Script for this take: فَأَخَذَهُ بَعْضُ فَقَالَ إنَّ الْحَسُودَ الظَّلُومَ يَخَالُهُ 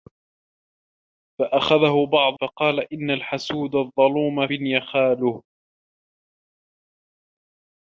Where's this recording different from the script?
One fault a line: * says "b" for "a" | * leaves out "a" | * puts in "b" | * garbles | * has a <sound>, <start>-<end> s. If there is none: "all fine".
all fine